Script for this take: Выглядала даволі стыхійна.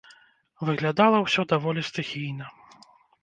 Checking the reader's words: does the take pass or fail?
fail